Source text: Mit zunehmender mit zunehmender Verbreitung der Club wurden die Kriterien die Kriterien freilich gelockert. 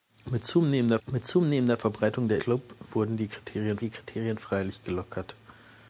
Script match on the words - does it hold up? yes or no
yes